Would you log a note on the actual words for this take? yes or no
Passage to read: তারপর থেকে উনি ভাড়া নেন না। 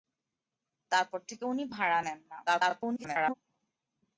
yes